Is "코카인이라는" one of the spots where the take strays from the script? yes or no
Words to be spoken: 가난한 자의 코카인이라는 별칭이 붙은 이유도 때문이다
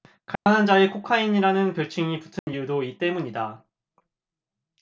no